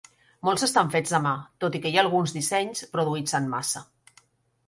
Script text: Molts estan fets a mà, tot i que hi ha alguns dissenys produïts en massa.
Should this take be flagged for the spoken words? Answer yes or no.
no